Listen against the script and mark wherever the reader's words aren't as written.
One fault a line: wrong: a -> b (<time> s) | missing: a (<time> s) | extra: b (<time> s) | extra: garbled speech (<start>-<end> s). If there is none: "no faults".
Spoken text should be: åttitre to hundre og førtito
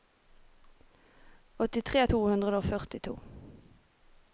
no faults